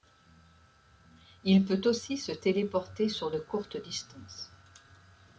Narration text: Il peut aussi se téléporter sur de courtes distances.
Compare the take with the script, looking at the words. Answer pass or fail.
pass